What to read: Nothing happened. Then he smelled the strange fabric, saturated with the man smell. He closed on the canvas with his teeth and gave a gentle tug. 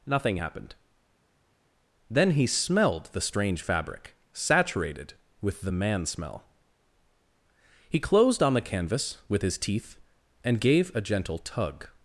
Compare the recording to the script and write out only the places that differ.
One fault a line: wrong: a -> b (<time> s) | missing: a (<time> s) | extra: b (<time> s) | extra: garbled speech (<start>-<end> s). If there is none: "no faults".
no faults